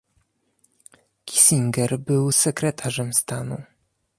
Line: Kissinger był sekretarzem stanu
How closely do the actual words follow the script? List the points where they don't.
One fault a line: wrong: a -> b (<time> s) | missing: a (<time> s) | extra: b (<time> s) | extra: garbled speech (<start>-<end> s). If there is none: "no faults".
no faults